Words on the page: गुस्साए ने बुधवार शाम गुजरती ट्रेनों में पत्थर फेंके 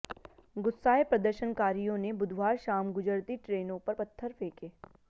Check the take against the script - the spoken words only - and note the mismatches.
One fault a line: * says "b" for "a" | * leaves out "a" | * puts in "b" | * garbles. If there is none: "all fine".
* puts in "प्रदर्शनकारियों"
* says "पर" for "में"